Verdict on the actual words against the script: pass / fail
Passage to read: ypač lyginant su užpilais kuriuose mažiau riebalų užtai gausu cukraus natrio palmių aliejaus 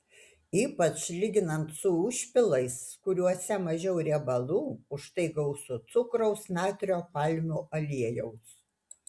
pass